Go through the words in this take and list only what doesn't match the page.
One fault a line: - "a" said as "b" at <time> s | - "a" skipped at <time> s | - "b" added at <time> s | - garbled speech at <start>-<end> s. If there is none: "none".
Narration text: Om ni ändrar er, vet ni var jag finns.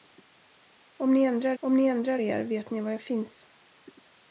- "om ni ändrar" added at 1.6 s